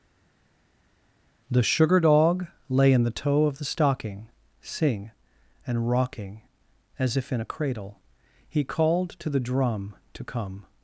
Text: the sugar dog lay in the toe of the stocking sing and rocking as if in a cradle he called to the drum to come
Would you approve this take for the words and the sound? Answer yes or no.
yes